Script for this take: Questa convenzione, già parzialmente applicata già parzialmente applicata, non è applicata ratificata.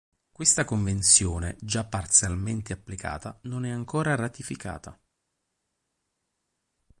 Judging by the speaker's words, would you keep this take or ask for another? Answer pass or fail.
fail